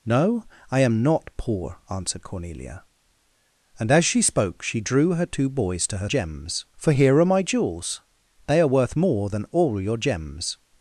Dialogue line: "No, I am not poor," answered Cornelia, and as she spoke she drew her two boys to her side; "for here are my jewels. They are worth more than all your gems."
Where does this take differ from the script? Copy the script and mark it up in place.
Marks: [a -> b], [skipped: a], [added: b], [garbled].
"No, I am not poor," answered Cornelia, and as she spoke she drew her two boys to her [side; -> gems] "for here are my jewels. They are worth more than all your gems."